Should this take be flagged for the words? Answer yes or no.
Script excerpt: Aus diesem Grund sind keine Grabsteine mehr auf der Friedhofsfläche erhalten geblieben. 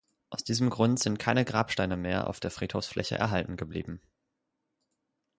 no